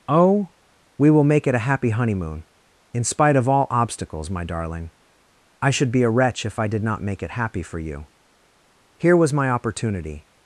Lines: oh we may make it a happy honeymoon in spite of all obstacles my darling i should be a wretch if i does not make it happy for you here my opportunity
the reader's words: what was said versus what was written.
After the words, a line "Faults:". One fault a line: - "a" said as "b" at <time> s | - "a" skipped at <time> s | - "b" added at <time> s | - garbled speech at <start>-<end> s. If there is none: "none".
oh we will make it a happy honeymoon in spite of all obstacles my darling i should be a wretch if i did not make it happy for you here was my opportunity
Faults:
- "may" said as "will" at 1.1 s
- "does" said as "did" at 6.7 s
- "was" added at 9.2 s